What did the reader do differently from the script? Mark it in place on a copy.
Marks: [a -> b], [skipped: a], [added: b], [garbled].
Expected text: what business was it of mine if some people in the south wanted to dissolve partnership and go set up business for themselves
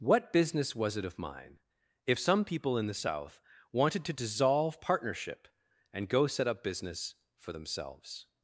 what business was it of mine if some people in the south wanted to dissolve partnership and go set up business for themselves